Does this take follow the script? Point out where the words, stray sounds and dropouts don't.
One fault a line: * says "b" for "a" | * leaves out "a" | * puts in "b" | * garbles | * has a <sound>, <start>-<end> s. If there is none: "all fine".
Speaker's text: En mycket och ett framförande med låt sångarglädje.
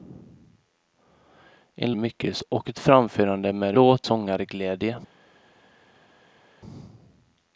all fine